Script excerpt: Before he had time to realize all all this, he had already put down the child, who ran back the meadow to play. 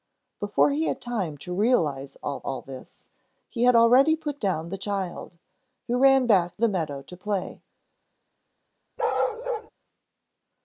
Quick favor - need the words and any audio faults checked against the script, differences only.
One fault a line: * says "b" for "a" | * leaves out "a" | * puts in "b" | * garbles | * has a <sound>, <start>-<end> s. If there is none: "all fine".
* has a bark, 9.0-9.7 s